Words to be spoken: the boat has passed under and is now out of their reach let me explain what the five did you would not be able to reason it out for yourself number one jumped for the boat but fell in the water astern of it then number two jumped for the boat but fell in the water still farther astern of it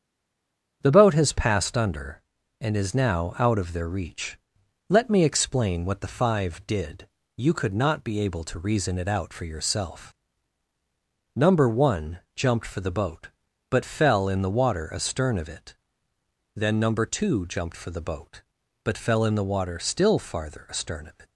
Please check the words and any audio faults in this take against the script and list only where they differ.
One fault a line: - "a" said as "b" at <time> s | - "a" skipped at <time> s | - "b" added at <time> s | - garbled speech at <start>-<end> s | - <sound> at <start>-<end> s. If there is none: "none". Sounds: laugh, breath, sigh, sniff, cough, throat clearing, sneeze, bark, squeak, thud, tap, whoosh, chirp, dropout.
- "would" said as "could" at 7.5 s